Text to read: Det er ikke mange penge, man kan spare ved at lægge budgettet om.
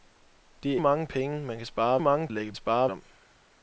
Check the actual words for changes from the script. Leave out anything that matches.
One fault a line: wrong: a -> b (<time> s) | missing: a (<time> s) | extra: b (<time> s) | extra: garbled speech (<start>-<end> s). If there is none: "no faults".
missing: ikke (0.8 s)
wrong: ved -> mange (2.0 s)
wrong: budgettet -> spare (2.5 s)